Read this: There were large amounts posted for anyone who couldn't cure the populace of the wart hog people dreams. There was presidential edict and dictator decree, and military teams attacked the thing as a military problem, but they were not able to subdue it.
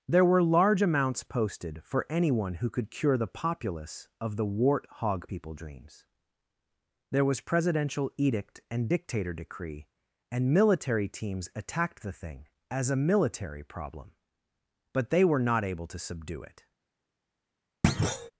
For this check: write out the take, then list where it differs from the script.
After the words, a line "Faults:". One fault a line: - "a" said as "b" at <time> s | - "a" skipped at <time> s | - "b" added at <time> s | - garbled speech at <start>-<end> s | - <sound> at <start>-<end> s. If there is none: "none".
There were large amounts posted for anyone who could cure the populace of the wart hog people dreams. There was presidential edict and dictator decree, and military teams attacked the thing as a military problem, but they were not able to subdue it.
Faults:
- "couldn't" said as "could" at 2.7 s
- thud at 17.8-18.3 s